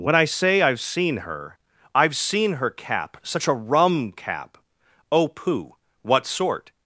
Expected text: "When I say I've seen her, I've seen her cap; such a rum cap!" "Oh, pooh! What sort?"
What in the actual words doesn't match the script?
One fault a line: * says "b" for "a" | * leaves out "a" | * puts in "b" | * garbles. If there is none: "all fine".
all fine